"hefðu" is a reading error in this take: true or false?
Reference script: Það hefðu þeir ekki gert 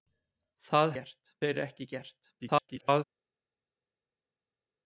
true